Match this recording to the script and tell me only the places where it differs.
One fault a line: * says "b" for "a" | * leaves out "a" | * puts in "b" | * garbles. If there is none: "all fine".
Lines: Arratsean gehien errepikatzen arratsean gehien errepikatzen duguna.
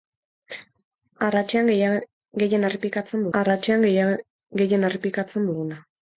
all fine